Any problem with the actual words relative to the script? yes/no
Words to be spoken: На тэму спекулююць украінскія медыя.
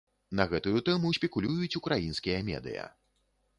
yes